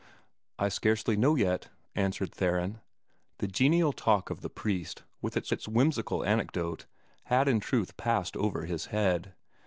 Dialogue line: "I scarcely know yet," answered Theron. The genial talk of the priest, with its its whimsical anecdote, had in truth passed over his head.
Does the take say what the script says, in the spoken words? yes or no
yes